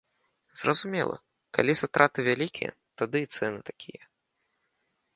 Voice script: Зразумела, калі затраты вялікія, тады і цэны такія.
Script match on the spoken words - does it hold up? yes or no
yes